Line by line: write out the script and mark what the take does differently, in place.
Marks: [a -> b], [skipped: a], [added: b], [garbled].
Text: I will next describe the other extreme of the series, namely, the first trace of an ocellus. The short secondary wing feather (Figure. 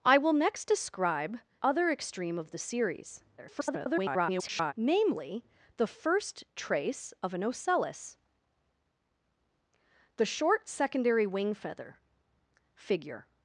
I will next describe [skipped: the] other extreme of the series, [garbled] namely, the first trace of an ocellus. The short secondary wing feather (Figure.